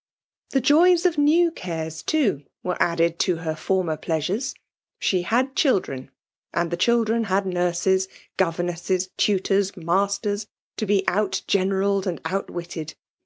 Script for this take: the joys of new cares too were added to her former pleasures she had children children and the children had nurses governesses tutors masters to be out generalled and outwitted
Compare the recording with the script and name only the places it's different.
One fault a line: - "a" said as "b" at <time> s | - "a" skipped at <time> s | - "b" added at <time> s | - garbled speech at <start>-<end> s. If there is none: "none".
- "children" skipped at 6.1 s